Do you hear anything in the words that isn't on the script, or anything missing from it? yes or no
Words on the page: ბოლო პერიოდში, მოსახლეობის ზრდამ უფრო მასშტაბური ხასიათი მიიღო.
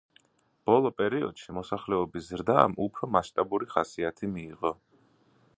no